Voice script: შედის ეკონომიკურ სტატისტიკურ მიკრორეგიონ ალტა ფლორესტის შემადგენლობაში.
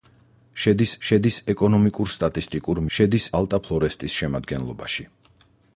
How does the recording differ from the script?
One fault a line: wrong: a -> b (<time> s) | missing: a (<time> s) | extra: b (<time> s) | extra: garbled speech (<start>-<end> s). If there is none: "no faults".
extra: შედის (1.1 s)
wrong: მიკრორეგიონ -> შედის (2.9 s)